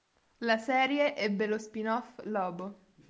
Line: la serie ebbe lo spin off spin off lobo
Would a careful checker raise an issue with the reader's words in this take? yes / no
yes